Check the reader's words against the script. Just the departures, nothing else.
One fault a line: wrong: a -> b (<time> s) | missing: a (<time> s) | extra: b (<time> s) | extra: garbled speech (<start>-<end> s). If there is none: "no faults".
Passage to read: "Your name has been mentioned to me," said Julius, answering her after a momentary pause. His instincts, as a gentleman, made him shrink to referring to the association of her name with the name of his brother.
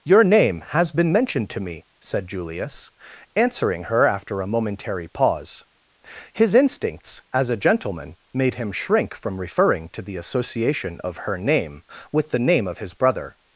wrong: to -> from (9.1 s)